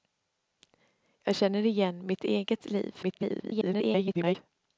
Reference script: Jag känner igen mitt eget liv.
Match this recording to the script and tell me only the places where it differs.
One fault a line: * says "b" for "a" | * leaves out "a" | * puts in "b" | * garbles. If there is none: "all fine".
* garbles